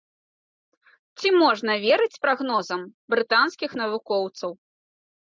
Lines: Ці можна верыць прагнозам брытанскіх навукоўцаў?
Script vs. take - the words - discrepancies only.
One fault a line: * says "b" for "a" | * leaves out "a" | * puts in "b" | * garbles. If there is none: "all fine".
all fine